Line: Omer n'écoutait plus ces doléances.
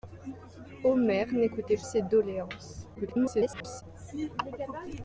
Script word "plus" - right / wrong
wrong